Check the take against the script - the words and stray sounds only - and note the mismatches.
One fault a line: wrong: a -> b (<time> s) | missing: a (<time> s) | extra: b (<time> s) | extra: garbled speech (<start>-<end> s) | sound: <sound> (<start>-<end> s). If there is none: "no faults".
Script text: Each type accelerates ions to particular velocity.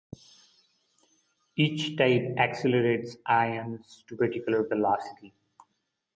no faults